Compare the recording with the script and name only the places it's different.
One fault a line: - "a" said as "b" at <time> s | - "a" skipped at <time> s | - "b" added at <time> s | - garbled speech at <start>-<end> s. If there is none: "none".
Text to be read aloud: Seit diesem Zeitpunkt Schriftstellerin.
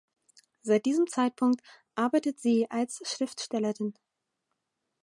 - "arbeitet sie als" added at 1.9 s